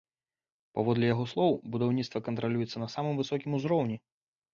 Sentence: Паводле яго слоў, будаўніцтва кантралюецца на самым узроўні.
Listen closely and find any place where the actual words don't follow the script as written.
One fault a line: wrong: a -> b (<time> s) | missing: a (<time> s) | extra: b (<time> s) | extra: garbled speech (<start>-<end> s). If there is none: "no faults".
extra: высокім (3.2 s)